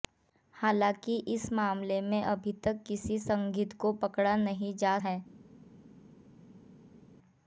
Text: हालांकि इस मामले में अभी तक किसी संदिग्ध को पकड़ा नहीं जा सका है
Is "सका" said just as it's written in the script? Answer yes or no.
no